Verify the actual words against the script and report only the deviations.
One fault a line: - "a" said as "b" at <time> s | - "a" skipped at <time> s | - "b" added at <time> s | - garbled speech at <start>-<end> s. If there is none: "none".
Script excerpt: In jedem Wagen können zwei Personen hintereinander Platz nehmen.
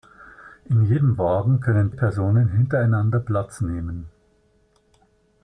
- "zwei" skipped at 1.9 s